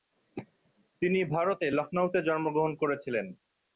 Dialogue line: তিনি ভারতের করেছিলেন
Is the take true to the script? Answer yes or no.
no